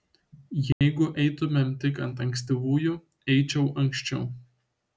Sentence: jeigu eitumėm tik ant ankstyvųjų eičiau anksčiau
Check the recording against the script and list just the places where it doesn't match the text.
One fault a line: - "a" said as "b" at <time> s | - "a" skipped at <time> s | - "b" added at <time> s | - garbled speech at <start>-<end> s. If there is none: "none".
none